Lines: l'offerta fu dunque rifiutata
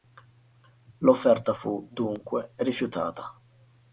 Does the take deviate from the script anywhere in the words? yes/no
no